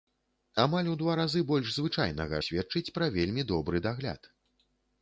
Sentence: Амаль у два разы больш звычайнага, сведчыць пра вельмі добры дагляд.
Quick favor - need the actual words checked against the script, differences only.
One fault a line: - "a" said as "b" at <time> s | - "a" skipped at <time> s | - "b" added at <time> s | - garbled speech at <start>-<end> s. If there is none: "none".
none